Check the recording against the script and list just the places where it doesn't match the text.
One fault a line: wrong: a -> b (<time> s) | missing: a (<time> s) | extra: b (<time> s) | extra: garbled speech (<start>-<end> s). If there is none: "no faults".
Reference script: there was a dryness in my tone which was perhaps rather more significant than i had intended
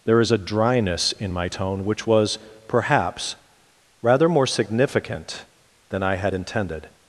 wrong: was -> is (0.2 s)